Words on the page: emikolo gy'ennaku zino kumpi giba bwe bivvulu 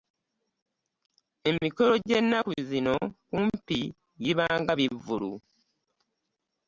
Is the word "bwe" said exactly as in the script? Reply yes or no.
no